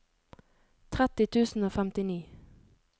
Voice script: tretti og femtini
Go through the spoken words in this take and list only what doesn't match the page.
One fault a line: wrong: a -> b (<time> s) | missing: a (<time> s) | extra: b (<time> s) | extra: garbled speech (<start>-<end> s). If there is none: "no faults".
extra: tusen (1.4 s)